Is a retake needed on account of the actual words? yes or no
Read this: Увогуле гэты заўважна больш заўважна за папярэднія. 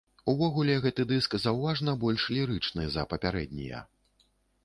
yes